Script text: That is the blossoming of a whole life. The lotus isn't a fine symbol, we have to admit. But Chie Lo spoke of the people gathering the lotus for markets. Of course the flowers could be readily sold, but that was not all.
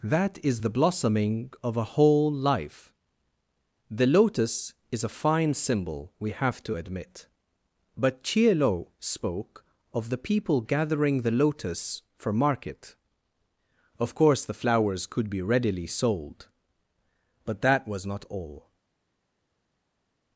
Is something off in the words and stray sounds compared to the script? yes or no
yes